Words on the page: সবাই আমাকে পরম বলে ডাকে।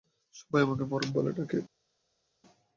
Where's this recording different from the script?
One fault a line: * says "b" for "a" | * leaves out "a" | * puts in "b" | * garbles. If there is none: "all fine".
all fine